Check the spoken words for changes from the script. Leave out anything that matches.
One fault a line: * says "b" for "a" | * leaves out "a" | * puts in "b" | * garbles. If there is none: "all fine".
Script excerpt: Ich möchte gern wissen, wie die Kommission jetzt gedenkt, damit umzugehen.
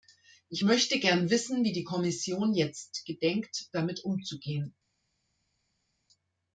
all fine